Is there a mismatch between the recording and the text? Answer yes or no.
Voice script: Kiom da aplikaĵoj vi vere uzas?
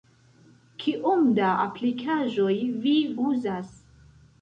yes